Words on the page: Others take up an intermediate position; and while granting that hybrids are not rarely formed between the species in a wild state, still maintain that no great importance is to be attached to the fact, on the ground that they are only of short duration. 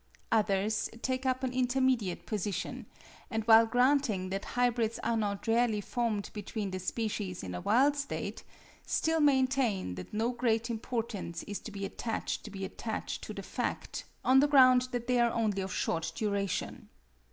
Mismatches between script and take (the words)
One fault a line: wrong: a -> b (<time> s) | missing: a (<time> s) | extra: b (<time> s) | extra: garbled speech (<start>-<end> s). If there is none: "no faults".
extra: be attached to (12.5 s)